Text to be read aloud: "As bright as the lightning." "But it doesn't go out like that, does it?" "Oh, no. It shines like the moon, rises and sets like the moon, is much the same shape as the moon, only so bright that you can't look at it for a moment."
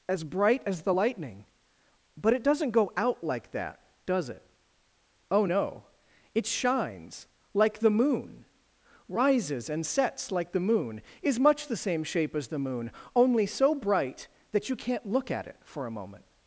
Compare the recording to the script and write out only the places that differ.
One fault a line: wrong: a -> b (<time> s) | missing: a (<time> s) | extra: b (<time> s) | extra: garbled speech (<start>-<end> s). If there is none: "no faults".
no faults